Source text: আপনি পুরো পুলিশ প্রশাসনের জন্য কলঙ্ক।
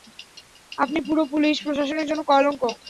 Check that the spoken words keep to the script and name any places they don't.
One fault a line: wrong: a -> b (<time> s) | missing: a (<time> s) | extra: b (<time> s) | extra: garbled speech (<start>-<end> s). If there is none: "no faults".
no faults